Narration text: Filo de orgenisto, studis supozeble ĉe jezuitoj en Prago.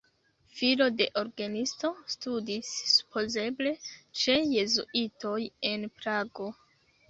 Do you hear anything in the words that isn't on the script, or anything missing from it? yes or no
no